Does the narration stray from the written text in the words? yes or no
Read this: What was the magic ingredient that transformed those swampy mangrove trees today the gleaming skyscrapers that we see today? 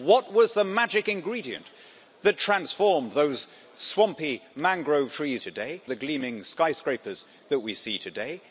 no